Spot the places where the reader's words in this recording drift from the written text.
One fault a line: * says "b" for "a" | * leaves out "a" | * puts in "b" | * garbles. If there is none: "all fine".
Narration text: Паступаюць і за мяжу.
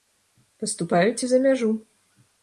all fine